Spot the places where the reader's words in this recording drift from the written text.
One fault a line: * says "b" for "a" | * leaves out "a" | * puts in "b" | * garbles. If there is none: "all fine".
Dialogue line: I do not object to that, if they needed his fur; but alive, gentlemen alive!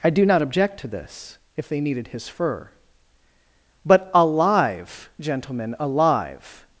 * says "this" for "that"